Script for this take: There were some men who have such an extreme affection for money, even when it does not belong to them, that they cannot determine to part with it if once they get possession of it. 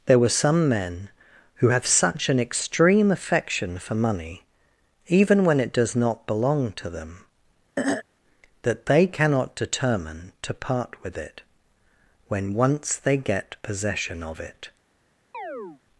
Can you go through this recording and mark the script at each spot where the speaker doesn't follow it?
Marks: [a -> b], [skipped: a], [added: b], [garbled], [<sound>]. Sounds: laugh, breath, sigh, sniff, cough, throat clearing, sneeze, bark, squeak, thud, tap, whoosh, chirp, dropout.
There were some men who have such an extreme affection for money, even when it does not belong to them, [throat clearing] that they cannot determine to part with it [if -> when] once they get possession of it. [chirp]